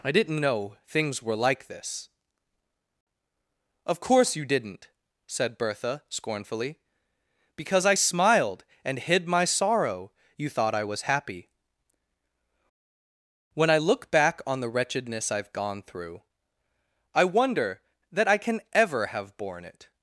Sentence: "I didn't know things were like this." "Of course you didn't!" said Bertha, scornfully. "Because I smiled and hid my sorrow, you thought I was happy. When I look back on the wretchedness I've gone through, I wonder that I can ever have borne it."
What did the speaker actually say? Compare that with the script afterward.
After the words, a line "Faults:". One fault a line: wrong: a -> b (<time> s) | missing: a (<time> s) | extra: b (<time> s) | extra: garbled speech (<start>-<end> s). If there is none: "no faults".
"I didn't know things were like this." "Of course you didn't!" said Bertha, scornfully. "Because I smiled and hid my sorrow, you thought I was happy. When I look back on the wretchedness I've gone through, I wonder that I can ever have borne it."
Faults:
no faults